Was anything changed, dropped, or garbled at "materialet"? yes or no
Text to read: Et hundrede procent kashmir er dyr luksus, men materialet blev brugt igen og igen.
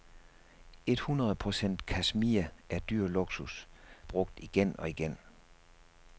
yes